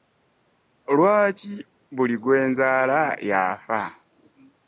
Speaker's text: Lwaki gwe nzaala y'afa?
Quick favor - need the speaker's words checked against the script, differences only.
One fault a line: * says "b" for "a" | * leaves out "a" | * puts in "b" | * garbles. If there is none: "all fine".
* puts in "buli"